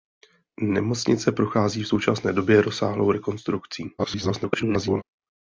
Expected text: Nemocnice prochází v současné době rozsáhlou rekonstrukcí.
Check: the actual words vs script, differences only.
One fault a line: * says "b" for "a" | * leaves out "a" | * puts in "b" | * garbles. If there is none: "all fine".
* garbles